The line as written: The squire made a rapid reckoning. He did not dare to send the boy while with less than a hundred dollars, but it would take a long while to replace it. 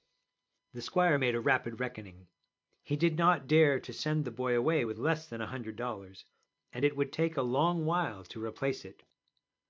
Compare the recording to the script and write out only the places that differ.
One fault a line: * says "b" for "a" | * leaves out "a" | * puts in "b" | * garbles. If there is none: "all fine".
* says "away" for "while"
* says "and" for "but"